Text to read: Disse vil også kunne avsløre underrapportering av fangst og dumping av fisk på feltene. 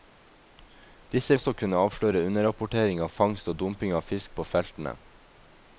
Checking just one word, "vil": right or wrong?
wrong